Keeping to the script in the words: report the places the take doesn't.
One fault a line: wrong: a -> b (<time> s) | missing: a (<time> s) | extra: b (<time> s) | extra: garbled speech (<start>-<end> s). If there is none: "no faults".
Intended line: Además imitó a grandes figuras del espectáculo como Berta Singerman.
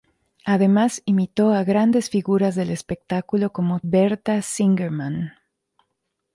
no faults